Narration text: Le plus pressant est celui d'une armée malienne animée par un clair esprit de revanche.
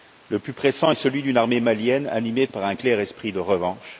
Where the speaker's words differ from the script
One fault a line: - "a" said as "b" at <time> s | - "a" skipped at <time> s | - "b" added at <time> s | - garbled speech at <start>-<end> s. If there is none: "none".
none